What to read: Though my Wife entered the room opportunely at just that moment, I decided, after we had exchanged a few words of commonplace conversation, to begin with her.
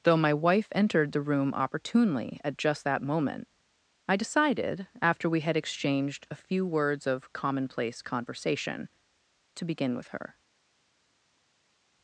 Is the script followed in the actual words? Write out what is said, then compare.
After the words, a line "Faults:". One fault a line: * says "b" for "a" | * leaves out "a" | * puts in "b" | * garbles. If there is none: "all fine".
Though my Wife entered the room opportunely at just that moment, I decided, after we had exchanged a few words of commonplace conversation, to begin with her.
Faults:
all fine